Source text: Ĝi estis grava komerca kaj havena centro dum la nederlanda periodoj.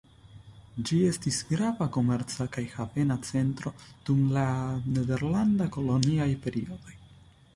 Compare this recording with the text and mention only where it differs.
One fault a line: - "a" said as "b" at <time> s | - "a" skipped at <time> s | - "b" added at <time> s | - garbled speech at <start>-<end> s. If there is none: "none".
- "koloniaj" added at 5.8 s